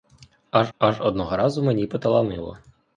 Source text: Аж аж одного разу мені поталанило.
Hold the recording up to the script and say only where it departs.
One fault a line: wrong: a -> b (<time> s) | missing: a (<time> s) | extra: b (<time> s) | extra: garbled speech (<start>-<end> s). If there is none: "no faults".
no faults